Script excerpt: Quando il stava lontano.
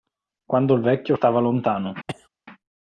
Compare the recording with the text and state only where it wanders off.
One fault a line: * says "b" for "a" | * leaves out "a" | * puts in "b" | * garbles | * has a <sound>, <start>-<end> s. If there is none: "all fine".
* puts in "vecchio"
* has a cough, 2.1-2.3 s